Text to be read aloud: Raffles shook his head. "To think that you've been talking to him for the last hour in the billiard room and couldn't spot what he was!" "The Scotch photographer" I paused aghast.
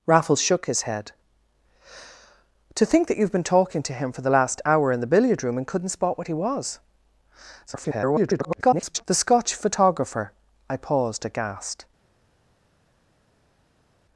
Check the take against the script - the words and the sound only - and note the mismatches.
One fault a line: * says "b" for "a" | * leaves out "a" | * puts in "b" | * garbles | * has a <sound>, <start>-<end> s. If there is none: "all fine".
* garbles